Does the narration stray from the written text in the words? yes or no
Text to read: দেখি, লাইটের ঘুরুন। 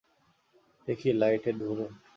no